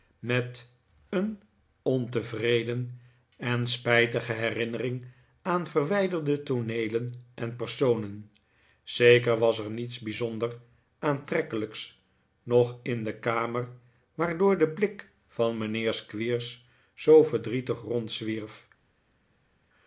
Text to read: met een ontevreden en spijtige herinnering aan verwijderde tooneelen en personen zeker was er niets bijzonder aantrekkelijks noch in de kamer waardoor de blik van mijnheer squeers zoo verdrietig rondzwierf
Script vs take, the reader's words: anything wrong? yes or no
no